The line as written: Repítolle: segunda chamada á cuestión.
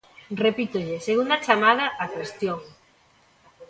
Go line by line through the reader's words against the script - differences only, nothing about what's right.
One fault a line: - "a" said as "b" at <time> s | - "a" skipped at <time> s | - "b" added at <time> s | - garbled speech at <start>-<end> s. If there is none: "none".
none